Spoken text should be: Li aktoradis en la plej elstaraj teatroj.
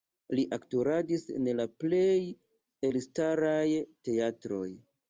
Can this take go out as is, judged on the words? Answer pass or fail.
pass